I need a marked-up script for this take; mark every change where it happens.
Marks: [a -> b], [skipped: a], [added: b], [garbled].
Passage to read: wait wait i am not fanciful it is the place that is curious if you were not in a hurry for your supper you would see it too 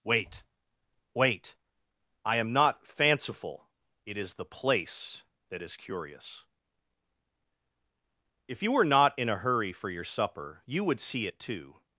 wait wait i am not fanciful it is the place that is curious if you were not in a hurry for your supper you would see it too